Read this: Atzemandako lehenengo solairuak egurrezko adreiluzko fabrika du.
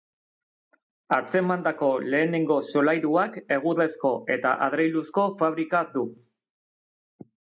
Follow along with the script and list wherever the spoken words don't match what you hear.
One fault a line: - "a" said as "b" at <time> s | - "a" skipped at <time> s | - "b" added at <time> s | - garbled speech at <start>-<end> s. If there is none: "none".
- "eta" added at 4.4 s